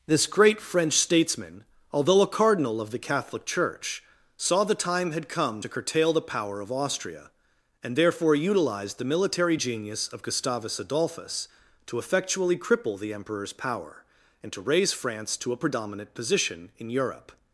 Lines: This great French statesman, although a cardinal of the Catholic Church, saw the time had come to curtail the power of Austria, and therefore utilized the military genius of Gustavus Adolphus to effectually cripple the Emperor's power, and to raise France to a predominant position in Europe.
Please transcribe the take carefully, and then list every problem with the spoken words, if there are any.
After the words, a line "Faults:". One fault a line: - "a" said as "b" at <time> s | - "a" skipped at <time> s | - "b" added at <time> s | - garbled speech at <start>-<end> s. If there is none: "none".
This great French statesman, although a cardinal of the Catholic Church, saw the time had come to curtail the power of Austria, and therefore utilized the military genius of Gustavus Adolphus to effectually cripple the Emperor's power, and to raise France to a predominant position in Europe.
Faults:
none